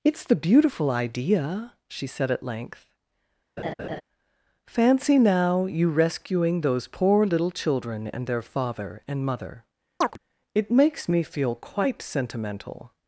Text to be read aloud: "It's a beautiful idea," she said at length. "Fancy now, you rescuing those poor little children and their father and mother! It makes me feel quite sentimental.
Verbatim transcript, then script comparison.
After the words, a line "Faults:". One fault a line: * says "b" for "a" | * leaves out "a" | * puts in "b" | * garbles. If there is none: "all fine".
"It's the beautiful idea," she said at length. "Fancy now, you rescuing those poor little children and their father and mother! It makes me feel quite sentimental.
Faults:
* says "the" for "a"